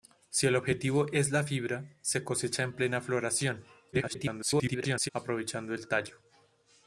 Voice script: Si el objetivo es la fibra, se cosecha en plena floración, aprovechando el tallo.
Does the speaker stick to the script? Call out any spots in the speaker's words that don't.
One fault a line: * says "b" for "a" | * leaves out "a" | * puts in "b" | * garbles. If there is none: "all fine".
* garbles